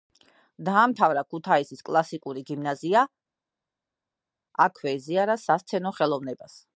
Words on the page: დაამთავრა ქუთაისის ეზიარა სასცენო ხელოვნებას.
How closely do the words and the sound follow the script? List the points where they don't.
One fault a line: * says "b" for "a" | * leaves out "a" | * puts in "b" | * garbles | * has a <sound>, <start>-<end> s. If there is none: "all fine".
* puts in "კლასიკური გიმნაზია აქვე"